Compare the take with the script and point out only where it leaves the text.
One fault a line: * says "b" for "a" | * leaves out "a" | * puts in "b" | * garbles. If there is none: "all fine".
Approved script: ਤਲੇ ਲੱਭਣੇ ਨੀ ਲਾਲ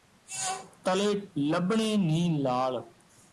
all fine